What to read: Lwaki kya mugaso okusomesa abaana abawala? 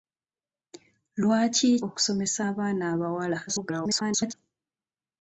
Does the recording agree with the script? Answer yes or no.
no